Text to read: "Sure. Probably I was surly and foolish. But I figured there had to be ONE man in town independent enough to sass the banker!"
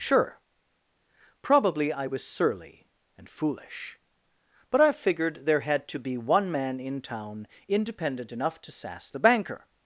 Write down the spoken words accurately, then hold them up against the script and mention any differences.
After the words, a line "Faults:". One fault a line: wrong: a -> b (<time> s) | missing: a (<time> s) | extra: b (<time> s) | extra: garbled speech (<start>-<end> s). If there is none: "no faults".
"Sure. Probably I was surly and foolish. But I figured there had to be ONE man in town independent enough to sass the banker!"
Faults:
no faults